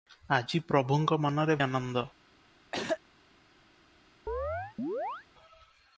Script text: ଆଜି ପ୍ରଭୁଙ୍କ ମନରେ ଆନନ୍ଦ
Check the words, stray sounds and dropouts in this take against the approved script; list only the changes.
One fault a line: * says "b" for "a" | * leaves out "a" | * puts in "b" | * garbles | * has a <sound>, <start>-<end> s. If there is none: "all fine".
* has a throat clearing, 2.7-3.0 s
* has a chirp, 4.3-5.3 s